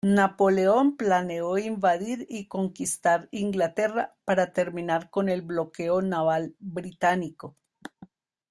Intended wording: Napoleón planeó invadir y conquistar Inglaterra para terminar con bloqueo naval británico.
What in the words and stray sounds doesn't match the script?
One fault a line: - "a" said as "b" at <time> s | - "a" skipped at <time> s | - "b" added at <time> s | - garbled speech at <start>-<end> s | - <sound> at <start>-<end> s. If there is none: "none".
- "el" added at 5.3 s